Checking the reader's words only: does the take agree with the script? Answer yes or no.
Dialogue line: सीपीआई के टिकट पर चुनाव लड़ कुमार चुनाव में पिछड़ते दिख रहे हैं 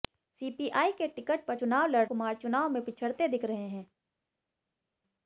yes